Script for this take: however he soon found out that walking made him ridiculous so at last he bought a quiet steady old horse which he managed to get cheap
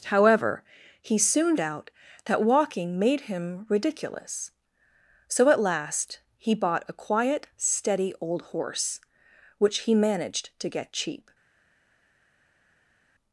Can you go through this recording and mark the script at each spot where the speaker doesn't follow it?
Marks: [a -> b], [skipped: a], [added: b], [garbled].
however he soon [skipped: found] out that walking made him ridiculous so at last he bought a quiet steady old horse which he managed to get cheap